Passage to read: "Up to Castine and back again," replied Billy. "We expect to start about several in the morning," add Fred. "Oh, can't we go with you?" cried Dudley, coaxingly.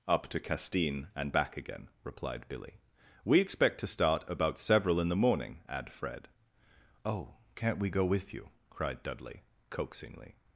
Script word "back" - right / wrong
right